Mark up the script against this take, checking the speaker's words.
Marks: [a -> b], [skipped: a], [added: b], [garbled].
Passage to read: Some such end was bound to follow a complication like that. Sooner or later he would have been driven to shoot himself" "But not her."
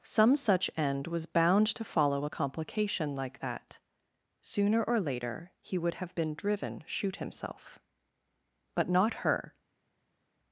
Some such end was bound to follow a complication like that. Sooner or later he would have been driven [skipped: to] shoot himself" "But not her."